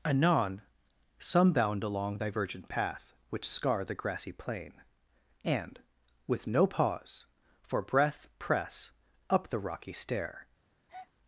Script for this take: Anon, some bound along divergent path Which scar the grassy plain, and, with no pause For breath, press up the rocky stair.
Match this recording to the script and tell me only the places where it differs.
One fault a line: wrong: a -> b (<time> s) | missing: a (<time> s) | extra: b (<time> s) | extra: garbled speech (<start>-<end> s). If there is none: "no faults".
no faults